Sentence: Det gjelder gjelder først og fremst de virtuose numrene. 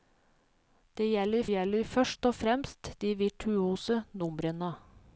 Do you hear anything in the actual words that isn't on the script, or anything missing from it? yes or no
no